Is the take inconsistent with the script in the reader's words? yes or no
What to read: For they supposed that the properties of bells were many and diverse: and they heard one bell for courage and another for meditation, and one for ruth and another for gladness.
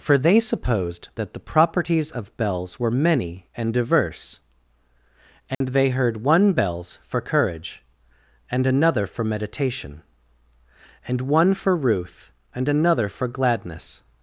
yes